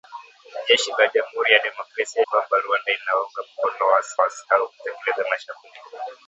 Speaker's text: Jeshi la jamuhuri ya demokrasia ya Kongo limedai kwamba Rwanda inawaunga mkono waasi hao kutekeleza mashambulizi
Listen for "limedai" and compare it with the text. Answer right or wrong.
wrong